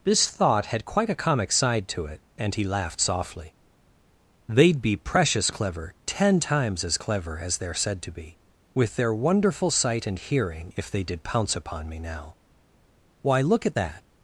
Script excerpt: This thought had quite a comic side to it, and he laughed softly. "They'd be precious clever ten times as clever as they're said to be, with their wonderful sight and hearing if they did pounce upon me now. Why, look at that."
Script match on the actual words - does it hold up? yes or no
yes